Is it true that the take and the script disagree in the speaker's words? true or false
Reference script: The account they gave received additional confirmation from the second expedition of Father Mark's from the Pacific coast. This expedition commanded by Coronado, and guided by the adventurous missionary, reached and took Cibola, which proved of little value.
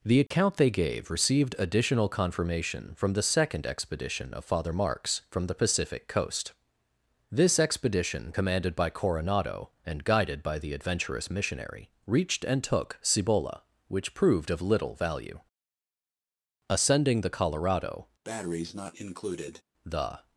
true